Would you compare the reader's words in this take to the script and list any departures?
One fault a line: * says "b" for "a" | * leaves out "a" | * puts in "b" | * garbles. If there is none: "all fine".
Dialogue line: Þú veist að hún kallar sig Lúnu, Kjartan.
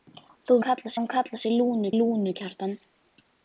* says "kallar" for "veist"
* puts in "Lúnu"